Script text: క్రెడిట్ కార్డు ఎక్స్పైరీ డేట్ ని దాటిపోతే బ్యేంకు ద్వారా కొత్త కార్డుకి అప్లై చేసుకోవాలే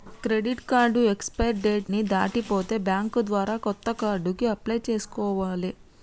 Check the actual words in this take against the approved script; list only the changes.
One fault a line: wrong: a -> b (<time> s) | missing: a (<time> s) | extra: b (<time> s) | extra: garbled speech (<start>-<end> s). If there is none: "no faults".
no faults